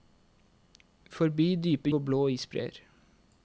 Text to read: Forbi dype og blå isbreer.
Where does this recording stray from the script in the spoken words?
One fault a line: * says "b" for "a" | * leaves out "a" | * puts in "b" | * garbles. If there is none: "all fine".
all fine